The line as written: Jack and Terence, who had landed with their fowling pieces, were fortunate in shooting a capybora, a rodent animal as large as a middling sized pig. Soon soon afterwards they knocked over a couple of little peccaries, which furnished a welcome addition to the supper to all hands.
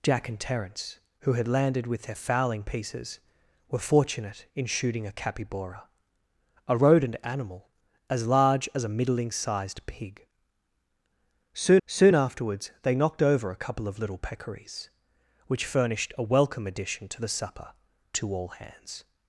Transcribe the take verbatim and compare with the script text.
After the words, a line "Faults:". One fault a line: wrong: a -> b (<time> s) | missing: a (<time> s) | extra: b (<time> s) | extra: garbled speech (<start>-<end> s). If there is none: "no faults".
Jack and Terence, who had landed with their fowling pieces, were fortunate in shooting a capybora, a rodent animal as large as a middling sized pig. Soon soon afterwards they knocked over a couple of little peccaries, which furnished a welcome addition to the supper to all hands.
Faults:
no faults